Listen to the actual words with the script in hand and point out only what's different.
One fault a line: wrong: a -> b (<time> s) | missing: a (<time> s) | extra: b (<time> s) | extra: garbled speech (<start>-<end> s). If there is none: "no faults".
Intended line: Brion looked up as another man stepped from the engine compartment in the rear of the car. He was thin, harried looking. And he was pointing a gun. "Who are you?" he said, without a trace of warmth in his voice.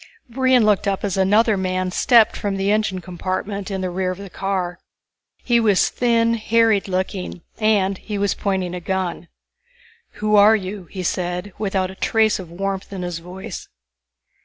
no faults